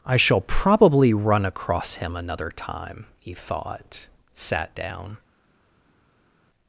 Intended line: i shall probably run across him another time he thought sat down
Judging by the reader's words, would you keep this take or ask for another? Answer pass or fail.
pass